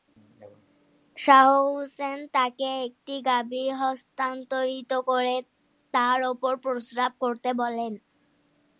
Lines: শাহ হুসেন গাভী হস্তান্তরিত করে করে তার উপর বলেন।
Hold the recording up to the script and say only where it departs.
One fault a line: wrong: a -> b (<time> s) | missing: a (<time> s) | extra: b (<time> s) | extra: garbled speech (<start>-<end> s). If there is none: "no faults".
extra: তাকে একটি (2.3 s)
missing: করে (5.3 s)
extra: প্রস্রাব করতে (6.6 s)